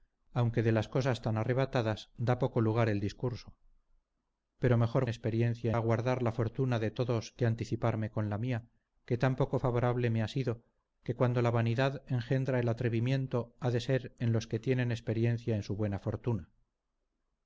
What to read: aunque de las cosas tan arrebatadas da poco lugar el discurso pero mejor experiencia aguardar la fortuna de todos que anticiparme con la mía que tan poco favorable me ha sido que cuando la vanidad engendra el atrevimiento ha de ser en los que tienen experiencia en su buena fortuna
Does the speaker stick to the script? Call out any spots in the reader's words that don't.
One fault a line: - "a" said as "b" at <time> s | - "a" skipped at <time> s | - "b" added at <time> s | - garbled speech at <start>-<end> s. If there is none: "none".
none